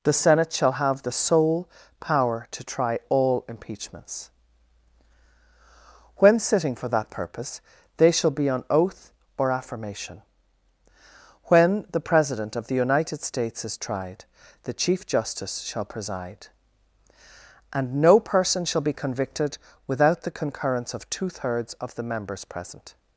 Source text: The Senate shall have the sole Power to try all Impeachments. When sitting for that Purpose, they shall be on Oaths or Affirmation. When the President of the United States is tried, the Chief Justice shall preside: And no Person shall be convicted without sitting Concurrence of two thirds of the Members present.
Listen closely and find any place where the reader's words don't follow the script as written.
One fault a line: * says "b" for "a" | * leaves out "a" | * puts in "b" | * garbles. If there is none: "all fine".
* says "Oath" for "Oaths"
* says "the" for "sitting"